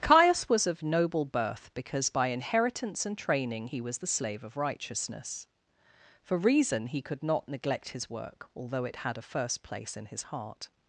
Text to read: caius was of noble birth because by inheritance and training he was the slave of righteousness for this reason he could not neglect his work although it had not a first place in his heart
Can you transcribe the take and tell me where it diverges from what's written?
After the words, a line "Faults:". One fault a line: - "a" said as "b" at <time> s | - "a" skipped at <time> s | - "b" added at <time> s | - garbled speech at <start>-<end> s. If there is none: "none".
caius was of noble birth because by inheritance and training he was the slave of righteousness for reason he could not neglect his work although it had a first place in his heart
Faults:
- "this" skipped at 6.4 s
- "not" skipped at 9.2 s